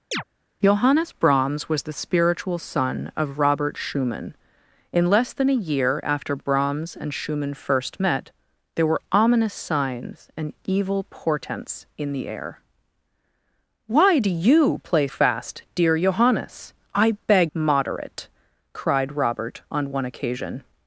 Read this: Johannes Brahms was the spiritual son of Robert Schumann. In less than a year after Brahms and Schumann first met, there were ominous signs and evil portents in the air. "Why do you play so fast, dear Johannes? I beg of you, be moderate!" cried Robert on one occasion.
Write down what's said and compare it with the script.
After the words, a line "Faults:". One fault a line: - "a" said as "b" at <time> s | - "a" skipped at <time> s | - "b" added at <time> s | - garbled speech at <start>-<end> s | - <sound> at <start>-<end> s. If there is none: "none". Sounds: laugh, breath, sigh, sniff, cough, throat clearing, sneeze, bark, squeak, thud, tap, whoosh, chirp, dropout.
Johannes Brahms was the spiritual son of Robert Schumann. In less than a year after Brahms and Schumann first met, there were ominous signs and evil portents in the air. "Why do you play fast, dear Johannes? I beg moderate!" cried Robert on one occasion.
Faults:
- chirp at 0.1-0.2 s
- "so" skipped at 15.1 s
- "of you be" skipped at 17.5 s